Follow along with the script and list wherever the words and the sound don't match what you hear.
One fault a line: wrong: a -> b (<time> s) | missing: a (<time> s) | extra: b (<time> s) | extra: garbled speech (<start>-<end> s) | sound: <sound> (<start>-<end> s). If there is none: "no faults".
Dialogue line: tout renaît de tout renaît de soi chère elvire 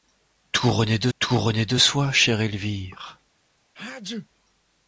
sound: sneeze (3.7-4.3 s)